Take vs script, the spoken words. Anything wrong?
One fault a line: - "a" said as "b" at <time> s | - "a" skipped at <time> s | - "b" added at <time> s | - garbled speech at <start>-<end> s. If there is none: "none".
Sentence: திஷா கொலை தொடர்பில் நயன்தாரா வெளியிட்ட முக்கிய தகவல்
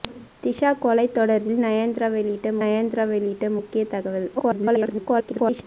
- "நயன்தாரா வெளியிட்ட" added at 2.6 s
- garbled speech at 4.4-5.6 s